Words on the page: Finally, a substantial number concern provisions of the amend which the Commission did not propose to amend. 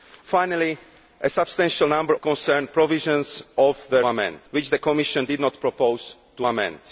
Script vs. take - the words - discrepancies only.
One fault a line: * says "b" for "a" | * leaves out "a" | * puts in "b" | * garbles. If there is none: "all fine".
all fine